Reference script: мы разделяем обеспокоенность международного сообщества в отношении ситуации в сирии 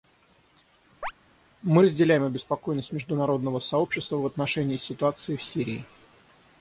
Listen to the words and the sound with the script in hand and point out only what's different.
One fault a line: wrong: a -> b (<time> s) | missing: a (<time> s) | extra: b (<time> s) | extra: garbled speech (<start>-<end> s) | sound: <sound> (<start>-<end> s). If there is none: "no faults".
sound: chirp (1.0-1.1 s)